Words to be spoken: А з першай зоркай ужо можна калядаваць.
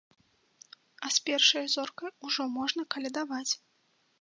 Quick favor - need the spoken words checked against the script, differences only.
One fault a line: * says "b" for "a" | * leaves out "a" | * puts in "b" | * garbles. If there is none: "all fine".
all fine